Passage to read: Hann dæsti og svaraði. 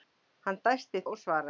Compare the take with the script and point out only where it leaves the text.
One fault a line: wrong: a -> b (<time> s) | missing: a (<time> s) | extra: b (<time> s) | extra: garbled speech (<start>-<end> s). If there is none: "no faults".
no faults